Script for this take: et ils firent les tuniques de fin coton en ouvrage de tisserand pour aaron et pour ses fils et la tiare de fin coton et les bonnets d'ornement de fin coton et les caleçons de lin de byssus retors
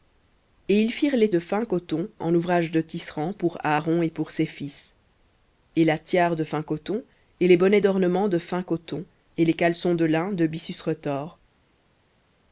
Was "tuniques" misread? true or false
true